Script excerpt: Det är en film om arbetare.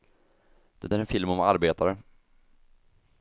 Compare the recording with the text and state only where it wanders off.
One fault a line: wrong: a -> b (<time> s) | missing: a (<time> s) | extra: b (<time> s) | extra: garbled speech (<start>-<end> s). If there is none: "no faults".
no faults